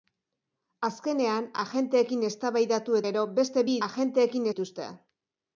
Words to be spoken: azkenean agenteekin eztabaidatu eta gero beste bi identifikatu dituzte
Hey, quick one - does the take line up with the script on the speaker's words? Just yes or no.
no